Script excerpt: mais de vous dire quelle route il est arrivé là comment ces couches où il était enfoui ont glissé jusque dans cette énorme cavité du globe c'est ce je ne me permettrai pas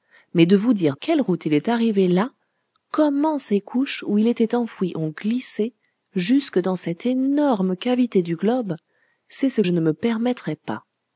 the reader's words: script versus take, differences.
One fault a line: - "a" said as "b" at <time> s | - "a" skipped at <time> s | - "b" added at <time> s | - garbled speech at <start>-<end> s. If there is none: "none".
none